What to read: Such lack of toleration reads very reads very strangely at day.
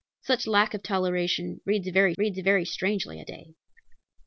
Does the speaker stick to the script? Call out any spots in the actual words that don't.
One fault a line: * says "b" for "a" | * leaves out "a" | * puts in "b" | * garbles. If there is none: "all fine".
all fine